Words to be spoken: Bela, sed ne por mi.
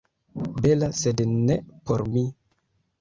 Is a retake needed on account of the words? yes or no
no